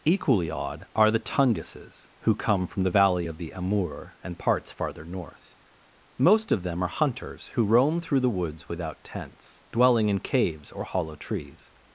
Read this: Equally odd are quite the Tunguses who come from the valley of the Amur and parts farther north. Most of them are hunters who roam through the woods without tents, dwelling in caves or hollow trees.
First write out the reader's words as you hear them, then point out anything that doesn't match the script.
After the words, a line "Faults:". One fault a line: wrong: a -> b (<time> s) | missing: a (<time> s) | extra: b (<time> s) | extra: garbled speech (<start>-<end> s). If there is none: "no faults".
Equally odd are the Tunguses who come from the valley of the Amur and parts farther north. Most of them are hunters who roam through the woods without tents, dwelling in caves or hollow trees.
Faults:
missing: quite (1.1 s)